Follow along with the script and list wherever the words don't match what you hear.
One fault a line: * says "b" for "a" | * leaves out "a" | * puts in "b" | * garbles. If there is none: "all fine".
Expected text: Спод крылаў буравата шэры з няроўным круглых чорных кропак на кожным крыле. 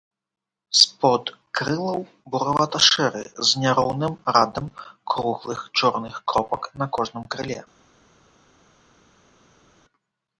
* puts in "радам"